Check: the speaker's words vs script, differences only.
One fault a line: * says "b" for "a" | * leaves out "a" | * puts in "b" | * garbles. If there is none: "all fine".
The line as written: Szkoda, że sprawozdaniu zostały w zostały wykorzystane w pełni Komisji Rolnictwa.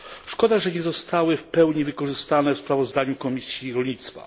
* says "nie" for "sprawozdaniu"
* says "pełni" for "zostały"
* says "sprawozdaniu" for "pełni"